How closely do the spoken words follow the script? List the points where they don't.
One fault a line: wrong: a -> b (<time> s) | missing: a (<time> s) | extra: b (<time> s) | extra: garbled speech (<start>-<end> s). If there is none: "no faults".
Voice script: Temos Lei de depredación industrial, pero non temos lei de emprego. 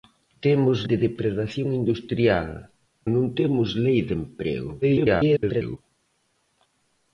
missing: Lei (0.8 s)
missing: pero (2.5 s)
extra: garbled speech (4.8-5.8 s)